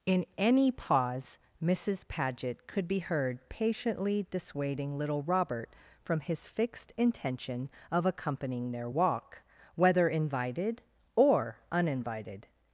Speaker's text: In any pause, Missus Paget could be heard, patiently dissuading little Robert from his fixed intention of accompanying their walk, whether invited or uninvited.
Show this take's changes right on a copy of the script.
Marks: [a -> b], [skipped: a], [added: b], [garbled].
In any pause, Missus Paget could be heard, patiently dissuading little Robert from his fixed intention of accompanying their walk, whether invited or uninvited.